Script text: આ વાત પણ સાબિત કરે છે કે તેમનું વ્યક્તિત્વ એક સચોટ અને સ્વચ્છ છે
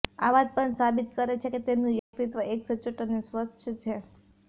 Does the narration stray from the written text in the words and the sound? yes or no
yes